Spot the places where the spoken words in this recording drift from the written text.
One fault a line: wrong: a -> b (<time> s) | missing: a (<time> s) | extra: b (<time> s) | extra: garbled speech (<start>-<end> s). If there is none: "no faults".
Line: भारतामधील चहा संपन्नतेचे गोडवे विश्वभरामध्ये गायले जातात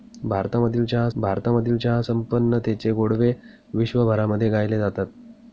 extra: भारतामधील चहा (1.2 s)